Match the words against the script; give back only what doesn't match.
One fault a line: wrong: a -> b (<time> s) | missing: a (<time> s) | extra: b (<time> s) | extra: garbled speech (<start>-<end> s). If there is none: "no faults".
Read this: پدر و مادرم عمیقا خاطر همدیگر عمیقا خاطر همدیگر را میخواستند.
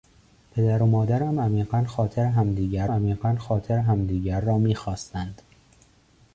no faults